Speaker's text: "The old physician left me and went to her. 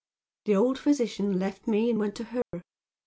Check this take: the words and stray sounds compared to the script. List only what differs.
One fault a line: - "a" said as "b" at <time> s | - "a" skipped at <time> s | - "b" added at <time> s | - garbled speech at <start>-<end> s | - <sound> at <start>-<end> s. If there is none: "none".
- dropout at 2.4-2.5 s